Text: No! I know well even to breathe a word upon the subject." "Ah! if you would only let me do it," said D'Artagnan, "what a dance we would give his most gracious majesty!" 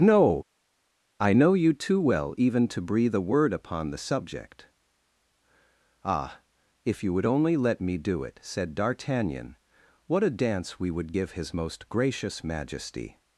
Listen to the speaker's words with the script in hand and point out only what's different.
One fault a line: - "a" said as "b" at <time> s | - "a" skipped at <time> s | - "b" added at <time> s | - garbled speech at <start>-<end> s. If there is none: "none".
- "you too" added at 1.5 s